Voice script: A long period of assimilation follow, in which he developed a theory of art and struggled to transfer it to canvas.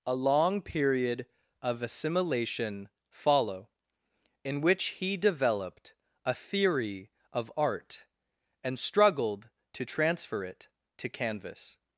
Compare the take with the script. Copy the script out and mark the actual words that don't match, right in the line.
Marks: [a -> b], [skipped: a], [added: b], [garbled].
A long period of assimilation follow, in which he developed a theory of art and struggled to transfer it to canvas.